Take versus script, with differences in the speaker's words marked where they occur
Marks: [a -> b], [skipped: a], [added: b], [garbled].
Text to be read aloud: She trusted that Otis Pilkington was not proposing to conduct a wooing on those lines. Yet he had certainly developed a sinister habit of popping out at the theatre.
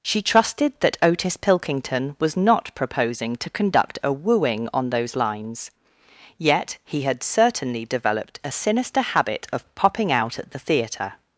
She trusted that Otis Pilkington was not proposing to conduct a wooing on those lines. Yet he had certainly developed a sinister habit of popping out at the theatre.